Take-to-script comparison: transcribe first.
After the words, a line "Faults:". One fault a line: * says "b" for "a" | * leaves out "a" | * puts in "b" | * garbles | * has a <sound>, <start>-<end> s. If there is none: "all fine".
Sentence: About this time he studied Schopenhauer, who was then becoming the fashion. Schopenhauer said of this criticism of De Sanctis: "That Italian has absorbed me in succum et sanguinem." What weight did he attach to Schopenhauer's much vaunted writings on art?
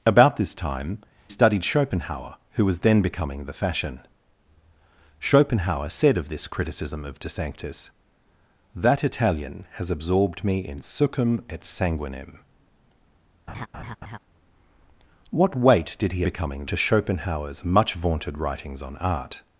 About this time studied Schopenhauer, who was then becoming the fashion. Schopenhauer said of this criticism of De Sanctis: "That Italian has absorbed me in succum et sanguinem." What weight did he becoming to Schopenhauer's much vaunted writings on art?
Faults:
* leaves out "he"
* has a laugh, 13.5-14.2 s
* says "becoming" for "attach"